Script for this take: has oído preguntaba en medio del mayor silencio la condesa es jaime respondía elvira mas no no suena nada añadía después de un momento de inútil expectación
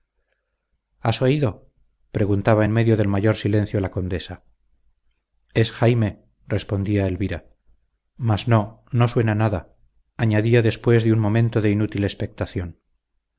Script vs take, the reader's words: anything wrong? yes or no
no